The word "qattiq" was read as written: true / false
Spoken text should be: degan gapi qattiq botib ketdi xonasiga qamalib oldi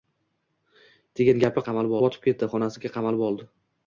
false